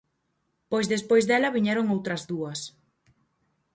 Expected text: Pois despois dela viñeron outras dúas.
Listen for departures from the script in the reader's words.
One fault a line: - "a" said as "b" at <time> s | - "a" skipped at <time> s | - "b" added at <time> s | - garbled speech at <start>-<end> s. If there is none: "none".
none